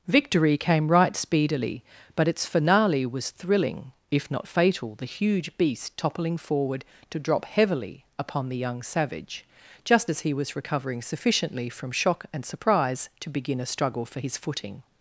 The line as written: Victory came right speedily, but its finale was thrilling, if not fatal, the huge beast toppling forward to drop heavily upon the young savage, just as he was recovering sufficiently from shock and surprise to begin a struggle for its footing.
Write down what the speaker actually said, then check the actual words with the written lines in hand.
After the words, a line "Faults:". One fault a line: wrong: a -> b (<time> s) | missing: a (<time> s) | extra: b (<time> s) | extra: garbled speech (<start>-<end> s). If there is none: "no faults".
Victory came right speedily, but its finale was thrilling, if not fatal, the huge beast toppling forward to drop heavily upon the young savage, just as he was recovering sufficiently from shock and surprise to begin a struggle for his footing.
Faults:
wrong: its -> his (14.2 s)